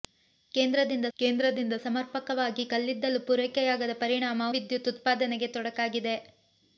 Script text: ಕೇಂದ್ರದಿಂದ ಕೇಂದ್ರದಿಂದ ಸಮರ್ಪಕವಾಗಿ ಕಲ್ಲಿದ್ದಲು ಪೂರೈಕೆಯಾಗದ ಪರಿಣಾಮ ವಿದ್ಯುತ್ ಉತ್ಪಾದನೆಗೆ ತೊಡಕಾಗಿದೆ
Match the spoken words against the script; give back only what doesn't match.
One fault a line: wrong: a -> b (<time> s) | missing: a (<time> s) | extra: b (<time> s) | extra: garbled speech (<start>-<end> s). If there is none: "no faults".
no faults